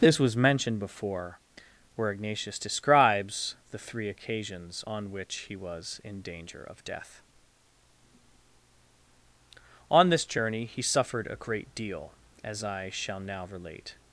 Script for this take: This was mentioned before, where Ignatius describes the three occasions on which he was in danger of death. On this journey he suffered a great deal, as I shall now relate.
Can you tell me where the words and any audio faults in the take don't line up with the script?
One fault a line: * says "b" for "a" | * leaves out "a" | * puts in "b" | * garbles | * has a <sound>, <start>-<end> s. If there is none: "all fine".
all fine